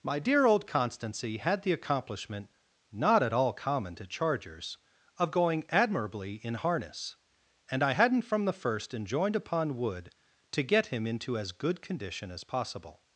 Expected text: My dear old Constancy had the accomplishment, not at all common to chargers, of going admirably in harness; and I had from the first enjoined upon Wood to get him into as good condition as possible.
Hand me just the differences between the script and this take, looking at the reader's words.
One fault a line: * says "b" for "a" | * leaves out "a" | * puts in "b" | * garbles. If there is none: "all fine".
* says "hadn't" for "had"